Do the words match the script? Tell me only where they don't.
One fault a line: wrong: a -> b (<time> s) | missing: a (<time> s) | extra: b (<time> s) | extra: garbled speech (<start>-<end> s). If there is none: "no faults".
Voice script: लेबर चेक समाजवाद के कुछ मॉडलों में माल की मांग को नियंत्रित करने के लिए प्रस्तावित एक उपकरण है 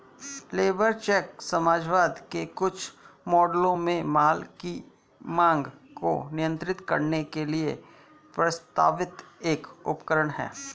no faults